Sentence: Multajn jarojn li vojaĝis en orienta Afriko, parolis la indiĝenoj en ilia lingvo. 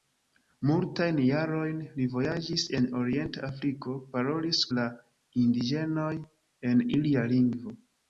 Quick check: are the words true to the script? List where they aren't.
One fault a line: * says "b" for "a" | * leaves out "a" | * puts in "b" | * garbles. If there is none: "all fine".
all fine